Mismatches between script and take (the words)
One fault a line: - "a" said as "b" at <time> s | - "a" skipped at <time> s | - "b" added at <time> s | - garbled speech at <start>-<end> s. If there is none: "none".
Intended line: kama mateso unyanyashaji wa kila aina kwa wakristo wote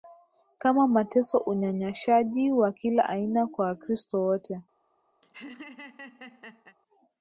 none